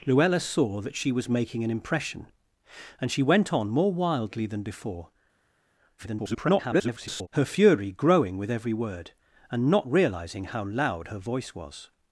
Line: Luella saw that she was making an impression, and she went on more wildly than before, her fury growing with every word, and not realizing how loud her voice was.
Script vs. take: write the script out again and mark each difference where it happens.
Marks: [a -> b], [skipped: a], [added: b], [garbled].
Luella saw that she was making an impression, and she went on more wildly than before, [garbled] her fury growing with every word, and not realizing how loud her voice was.